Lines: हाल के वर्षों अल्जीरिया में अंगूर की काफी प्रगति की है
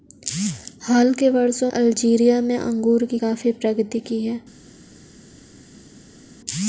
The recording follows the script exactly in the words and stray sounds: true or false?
true